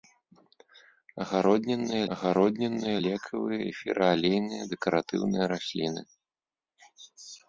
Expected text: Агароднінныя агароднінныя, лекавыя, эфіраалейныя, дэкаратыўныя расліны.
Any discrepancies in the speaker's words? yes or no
no